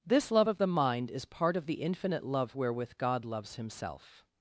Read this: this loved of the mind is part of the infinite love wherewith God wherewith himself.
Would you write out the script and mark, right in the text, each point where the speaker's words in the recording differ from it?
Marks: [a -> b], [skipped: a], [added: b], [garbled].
this [loved -> love] of the mind is part of the infinite love wherewith God [wherewith -> loves] himself.